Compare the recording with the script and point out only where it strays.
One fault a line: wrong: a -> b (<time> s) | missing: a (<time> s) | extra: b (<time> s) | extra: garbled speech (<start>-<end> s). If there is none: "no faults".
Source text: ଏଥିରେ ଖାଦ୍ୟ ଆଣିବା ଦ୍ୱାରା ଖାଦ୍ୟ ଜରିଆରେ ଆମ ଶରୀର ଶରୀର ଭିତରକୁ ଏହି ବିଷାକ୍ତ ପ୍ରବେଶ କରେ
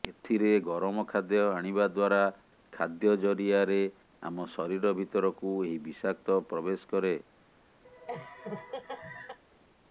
extra: ଗରମ (0.6 s)
missing: ଶରୀର (4.9 s)